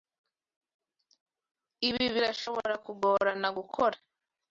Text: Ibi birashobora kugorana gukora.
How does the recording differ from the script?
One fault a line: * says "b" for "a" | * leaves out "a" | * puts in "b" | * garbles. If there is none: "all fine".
all fine